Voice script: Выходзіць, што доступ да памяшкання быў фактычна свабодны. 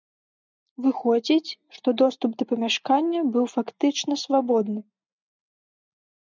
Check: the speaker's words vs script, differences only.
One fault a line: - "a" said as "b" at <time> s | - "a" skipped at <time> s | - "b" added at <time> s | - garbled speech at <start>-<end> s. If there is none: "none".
none